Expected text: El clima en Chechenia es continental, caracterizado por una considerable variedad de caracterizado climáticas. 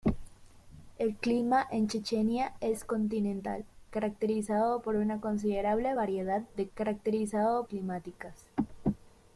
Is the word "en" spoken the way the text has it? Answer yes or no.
yes